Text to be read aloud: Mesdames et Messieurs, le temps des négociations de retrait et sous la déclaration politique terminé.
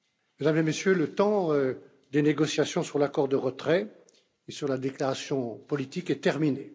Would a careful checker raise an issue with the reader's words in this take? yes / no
yes